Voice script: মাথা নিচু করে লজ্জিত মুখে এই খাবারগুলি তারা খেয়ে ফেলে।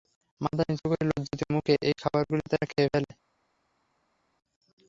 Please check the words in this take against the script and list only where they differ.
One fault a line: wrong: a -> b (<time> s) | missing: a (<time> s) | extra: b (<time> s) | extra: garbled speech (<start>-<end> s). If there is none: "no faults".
no faults